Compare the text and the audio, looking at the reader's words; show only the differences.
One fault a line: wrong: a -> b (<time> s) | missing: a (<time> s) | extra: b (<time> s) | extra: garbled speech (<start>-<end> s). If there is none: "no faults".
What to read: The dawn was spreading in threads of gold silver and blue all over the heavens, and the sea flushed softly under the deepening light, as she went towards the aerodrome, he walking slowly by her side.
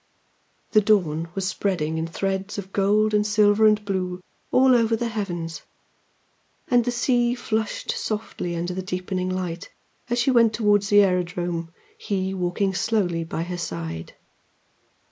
extra: and (3.1 s)